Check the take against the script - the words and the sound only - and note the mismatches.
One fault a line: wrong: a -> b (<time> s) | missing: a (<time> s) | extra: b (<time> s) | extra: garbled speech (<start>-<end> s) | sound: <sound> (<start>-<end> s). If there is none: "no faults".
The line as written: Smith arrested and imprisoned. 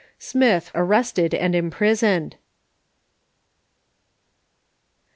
no faults